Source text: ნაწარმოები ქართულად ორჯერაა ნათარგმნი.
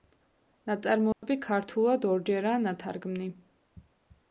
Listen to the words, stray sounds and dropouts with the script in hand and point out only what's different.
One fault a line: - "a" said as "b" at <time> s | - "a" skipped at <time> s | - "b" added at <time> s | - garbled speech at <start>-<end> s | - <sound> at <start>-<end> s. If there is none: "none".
- dropout at 1.1-1.2 s